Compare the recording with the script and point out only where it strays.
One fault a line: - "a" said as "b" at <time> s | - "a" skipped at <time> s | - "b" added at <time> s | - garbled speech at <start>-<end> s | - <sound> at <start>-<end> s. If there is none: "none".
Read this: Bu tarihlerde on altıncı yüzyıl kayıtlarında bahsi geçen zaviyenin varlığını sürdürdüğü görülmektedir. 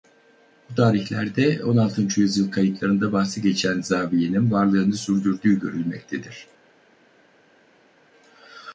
none